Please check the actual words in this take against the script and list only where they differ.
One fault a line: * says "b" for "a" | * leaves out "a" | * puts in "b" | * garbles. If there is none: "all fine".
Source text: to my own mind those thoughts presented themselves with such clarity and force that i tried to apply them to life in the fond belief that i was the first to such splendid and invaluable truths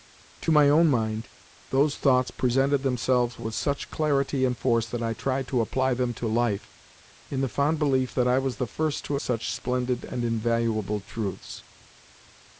all fine